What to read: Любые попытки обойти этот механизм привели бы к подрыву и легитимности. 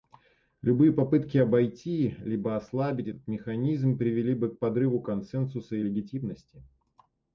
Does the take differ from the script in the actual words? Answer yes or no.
yes